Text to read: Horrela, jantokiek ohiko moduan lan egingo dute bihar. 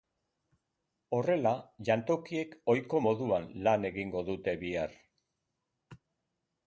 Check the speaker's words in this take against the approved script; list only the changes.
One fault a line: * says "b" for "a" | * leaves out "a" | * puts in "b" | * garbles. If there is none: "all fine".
all fine